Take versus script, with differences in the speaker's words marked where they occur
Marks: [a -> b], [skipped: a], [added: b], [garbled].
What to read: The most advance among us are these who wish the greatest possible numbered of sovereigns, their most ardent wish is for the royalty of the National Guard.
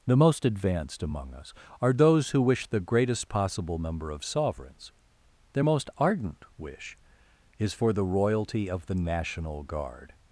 The most [advance -> advanced] among us are [these -> those] who wish the greatest possible [numbered -> number] of sovereigns, their most ardent wish is for the royalty of the National Guard.